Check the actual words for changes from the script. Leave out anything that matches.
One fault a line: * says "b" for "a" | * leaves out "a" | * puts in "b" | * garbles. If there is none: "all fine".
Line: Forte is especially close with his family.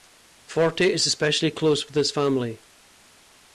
all fine